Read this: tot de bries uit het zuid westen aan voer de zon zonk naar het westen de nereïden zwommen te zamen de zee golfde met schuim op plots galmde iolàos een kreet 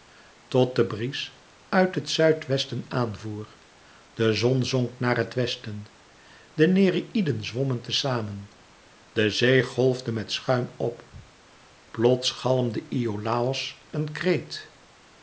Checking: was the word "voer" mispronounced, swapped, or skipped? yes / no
no